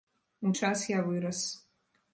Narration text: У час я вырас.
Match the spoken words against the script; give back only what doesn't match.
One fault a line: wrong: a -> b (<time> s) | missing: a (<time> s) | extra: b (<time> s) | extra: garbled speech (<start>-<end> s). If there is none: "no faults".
no faults